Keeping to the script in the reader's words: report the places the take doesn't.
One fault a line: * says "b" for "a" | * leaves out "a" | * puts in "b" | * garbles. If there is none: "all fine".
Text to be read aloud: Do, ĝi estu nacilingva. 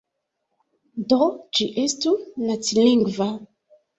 all fine